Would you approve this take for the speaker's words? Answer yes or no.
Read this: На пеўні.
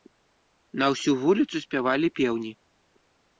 no